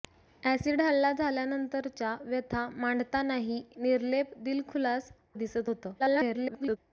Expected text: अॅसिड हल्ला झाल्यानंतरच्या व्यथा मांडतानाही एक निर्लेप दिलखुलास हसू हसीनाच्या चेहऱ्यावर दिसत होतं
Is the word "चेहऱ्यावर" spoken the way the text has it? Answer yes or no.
no